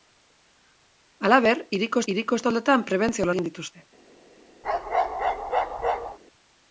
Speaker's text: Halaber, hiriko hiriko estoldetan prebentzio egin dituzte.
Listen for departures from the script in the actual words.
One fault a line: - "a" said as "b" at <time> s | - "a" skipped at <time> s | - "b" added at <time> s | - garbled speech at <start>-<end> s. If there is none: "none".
none